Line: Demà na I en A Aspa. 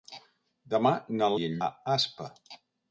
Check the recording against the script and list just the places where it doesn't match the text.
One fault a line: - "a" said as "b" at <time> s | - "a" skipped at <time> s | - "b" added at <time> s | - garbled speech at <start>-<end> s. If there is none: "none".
none